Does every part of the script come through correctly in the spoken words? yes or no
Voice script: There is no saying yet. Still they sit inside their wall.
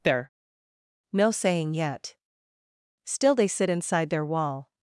no